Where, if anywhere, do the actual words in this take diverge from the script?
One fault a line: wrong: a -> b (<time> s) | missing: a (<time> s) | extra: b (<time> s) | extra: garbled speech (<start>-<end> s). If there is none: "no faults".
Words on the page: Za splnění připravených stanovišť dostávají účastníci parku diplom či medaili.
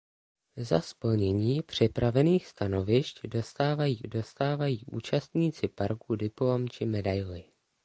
extra: dostávají (4.1 s)